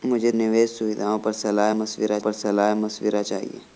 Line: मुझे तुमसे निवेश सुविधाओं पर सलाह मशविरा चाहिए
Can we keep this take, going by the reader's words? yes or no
no